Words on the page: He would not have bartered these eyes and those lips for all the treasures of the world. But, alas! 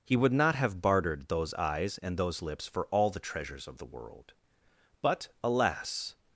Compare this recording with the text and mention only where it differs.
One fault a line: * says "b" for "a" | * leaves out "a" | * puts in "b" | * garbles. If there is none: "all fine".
* says "those" for "these"